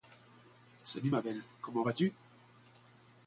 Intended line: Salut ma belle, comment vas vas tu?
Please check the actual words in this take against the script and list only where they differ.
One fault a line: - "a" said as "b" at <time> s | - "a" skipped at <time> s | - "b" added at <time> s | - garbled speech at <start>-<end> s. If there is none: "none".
- "vas" skipped at 1.9 s